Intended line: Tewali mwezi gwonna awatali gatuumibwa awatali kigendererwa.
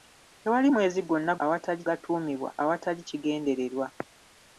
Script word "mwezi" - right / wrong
right